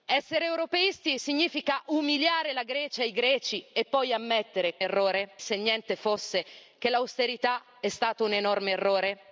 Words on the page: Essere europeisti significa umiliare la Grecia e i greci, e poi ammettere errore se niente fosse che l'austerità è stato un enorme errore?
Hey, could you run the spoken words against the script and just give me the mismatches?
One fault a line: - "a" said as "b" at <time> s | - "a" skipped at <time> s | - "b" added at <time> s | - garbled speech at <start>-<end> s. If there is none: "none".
none